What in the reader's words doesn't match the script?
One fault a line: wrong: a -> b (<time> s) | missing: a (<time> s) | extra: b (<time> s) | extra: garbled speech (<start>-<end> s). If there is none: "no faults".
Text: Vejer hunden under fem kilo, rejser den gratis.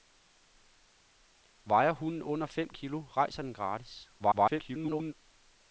extra: garbled speech (4.2-5.1 s)